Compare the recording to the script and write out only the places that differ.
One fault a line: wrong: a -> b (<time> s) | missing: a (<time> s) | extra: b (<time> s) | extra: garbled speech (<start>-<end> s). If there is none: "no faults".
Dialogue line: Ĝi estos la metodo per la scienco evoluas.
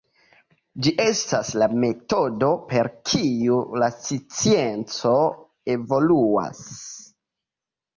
wrong: estos -> estas (1.0 s)
extra: kiu (3.1 s)